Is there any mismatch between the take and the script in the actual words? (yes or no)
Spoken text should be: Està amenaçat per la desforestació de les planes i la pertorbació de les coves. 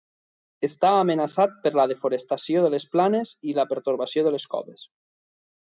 no